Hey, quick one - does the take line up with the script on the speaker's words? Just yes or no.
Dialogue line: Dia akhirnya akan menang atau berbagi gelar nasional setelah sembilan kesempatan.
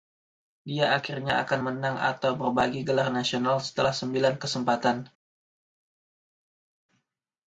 yes